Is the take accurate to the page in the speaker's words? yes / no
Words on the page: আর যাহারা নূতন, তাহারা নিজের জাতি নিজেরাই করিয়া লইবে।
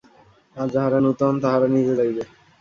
no